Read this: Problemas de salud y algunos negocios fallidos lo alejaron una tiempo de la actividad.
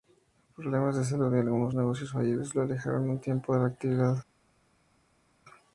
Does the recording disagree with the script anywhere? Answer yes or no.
yes